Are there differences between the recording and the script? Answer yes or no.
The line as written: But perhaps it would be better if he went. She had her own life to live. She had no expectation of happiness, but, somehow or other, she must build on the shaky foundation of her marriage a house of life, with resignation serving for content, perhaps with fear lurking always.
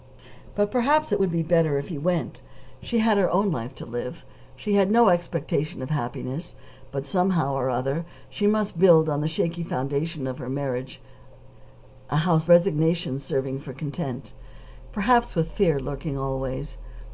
yes